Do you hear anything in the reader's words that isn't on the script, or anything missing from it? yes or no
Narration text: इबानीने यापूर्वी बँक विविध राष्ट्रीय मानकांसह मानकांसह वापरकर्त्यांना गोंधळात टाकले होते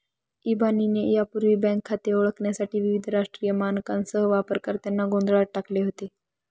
yes